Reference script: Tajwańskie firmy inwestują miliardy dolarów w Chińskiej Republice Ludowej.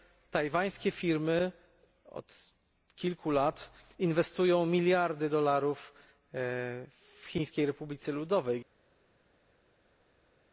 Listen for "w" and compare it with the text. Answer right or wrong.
right